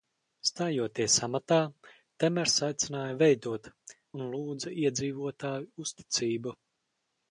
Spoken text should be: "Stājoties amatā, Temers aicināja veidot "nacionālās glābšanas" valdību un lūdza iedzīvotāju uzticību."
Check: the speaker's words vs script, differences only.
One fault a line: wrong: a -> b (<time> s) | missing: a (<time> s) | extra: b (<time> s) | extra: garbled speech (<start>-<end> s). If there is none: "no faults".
missing: nacionālās glābšanas valdību (3.7 s)